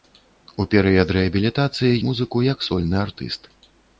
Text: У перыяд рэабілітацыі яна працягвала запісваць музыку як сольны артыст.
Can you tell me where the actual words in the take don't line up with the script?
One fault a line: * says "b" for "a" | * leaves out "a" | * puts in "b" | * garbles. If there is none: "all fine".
* leaves out "яна працягвала запісваць"